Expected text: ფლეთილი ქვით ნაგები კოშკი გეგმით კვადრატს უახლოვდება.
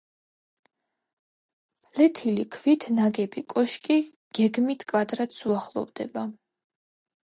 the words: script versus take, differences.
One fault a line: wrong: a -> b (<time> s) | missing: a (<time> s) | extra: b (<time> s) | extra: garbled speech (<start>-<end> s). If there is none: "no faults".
no faults